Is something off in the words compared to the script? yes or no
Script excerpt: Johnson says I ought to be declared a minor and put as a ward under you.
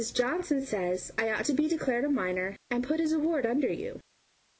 no